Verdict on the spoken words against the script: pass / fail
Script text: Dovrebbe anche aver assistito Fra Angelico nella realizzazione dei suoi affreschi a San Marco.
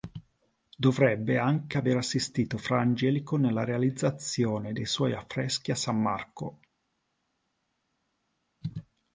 pass